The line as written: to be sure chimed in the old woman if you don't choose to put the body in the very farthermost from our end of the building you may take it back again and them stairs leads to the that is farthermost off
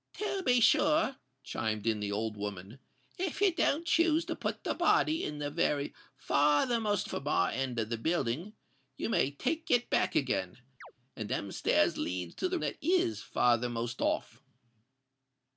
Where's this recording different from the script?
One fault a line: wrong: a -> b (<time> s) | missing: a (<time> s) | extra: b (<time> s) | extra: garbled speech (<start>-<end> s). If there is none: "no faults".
no faults